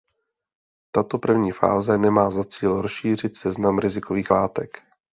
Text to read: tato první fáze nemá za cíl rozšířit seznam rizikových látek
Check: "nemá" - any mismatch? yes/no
no